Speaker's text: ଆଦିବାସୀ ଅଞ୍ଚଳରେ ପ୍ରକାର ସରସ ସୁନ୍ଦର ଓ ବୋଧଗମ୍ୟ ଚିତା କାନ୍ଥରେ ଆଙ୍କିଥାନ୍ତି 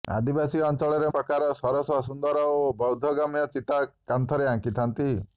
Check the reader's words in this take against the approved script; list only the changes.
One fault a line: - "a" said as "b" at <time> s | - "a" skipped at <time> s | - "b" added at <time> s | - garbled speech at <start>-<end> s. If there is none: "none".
none